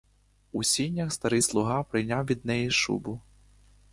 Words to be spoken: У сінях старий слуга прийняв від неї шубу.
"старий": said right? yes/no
yes